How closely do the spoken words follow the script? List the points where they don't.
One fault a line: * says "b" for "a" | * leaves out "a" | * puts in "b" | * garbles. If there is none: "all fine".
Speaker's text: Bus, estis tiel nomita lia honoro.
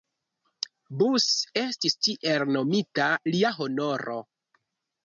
all fine